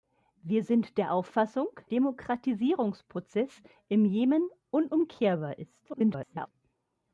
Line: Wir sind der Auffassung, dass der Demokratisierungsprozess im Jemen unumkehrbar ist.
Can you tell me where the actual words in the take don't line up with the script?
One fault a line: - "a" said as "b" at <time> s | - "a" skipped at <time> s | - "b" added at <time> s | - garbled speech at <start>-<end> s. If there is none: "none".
- "dass der" skipped at 1.7 s
- garbled speech at 5.9-6.5 s